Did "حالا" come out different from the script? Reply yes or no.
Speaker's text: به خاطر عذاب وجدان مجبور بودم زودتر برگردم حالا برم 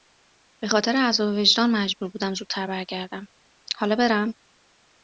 no